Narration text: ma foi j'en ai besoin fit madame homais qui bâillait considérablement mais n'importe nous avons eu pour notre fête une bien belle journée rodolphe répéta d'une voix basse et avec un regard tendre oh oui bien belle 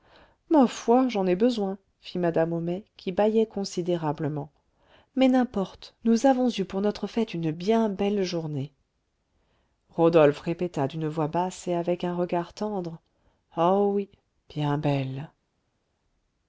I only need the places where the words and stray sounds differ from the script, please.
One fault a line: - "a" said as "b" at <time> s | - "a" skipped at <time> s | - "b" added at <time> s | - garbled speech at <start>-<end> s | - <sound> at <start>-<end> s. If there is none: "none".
none